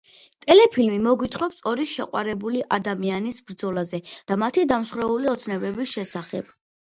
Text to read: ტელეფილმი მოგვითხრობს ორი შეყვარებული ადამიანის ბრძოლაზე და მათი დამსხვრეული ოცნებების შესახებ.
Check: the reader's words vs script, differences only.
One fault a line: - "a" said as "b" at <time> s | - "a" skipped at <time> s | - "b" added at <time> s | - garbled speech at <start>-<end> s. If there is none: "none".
none